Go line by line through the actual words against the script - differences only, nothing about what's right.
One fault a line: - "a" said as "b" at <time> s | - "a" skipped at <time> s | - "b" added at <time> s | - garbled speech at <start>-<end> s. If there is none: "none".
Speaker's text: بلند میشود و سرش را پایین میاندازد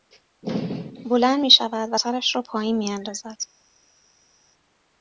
none